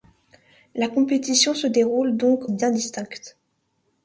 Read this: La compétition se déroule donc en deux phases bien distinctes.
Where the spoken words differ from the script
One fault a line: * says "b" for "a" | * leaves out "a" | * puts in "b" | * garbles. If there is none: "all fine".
* leaves out "en deux phases"